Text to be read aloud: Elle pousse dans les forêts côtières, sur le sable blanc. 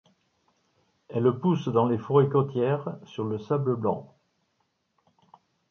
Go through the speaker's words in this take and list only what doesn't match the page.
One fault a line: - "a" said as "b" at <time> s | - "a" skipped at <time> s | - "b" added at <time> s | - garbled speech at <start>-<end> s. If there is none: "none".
none